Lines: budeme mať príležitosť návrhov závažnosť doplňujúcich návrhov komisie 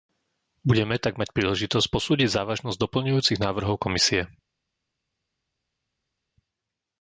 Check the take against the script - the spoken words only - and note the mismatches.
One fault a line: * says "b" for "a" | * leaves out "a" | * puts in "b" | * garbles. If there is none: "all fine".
* puts in "tak"
* says "posúdiť" for "návrhov"